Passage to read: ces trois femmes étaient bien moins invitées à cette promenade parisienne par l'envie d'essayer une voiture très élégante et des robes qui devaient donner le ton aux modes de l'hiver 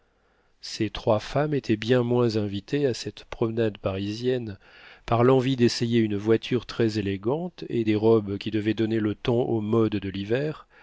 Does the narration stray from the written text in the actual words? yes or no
no